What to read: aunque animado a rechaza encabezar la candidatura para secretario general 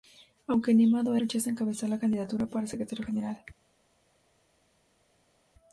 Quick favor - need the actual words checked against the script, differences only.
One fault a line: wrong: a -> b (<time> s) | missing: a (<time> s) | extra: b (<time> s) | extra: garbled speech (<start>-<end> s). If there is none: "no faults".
no faults